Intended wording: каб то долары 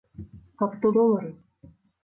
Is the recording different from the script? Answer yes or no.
no